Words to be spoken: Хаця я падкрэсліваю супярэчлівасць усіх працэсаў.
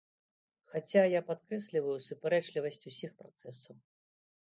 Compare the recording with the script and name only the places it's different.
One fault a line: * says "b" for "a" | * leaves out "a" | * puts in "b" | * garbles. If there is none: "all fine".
all fine